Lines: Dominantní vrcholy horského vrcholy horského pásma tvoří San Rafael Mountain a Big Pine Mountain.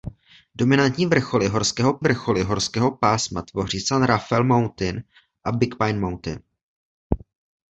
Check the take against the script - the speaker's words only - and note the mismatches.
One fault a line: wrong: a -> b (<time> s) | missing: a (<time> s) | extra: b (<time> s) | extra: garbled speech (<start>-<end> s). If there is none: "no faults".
no faults